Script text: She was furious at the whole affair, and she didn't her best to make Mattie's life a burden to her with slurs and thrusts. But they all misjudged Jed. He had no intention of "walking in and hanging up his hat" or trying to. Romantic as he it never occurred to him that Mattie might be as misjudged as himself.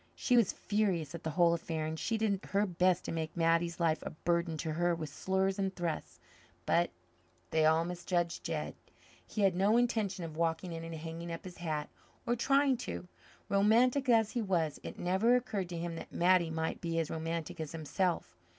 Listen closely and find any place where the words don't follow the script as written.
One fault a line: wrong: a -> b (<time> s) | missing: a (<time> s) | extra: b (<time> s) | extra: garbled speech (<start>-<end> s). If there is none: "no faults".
wrong: didn't -> did (2.2 s)
extra: was (14.4 s)
wrong: misjudged -> romantic (17.1 s)